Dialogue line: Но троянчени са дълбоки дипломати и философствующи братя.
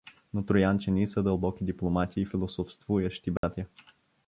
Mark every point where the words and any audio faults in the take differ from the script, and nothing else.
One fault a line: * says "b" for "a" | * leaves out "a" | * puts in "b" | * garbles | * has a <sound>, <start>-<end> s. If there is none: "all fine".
* has a dropout, 3.4-3.4 s